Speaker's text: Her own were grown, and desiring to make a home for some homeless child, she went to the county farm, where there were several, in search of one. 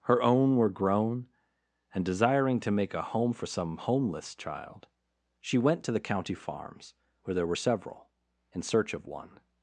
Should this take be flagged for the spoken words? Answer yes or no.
yes